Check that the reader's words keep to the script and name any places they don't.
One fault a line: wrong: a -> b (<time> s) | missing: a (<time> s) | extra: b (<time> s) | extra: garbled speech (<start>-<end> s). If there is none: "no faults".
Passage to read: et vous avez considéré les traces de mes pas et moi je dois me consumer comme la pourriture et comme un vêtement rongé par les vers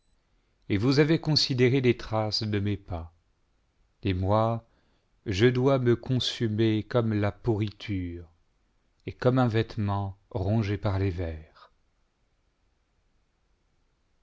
no faults